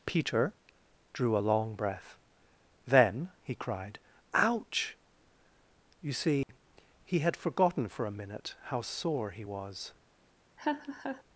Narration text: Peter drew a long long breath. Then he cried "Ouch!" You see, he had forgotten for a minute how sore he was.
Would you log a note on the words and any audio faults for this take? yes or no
yes